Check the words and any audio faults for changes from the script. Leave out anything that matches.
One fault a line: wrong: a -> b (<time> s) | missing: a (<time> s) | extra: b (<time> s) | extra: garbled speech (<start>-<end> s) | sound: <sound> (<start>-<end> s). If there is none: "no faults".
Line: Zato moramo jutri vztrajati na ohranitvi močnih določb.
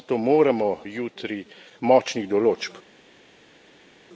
missing: vztrajati na ohranitvi (1.4 s)